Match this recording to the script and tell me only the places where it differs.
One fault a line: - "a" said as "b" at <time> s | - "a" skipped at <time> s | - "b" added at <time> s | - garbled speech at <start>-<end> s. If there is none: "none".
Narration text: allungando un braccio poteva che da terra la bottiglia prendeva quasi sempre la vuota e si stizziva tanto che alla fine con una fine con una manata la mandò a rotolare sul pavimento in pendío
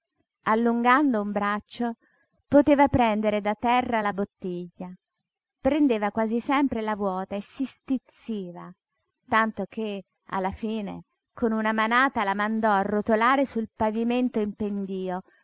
- "che" said as "prendere" at 2.9 s
- "fine con una" skipped at 11.7 s